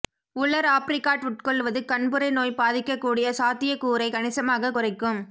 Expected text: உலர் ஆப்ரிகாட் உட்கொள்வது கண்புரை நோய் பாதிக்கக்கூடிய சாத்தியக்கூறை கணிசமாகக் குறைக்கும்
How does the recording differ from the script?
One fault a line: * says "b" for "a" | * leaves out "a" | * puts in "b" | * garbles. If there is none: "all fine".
all fine